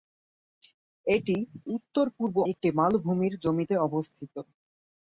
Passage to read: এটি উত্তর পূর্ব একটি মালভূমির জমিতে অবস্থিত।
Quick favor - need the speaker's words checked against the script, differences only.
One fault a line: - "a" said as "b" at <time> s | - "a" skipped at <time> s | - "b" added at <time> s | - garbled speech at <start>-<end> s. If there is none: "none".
none